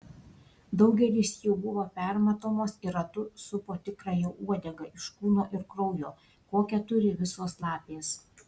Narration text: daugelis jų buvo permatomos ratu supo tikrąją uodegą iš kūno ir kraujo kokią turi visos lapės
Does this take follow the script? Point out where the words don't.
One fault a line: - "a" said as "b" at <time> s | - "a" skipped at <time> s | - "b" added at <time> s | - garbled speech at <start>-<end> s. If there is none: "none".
- "ir" added at 2.9 s